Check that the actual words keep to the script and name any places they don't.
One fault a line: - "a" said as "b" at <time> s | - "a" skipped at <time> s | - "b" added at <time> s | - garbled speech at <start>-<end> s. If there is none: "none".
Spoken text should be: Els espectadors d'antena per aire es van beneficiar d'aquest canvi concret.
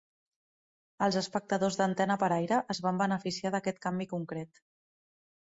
none